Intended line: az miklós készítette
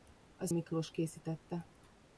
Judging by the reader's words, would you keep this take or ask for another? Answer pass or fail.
pass